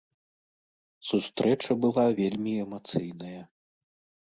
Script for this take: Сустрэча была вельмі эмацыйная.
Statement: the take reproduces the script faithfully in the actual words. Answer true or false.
true